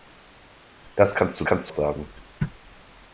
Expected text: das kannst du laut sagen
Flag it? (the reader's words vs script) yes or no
yes